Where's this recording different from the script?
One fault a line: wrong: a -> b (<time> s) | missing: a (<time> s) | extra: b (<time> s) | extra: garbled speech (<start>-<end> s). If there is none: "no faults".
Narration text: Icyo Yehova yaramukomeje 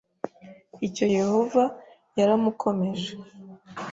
no faults